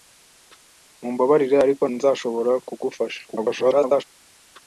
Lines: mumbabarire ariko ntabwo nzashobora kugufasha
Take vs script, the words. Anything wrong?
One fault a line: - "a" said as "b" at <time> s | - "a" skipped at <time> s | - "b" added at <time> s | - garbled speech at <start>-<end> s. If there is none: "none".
- "ntabwo" skipped at 1.8 s
- garbled speech at 3.3-4.0 s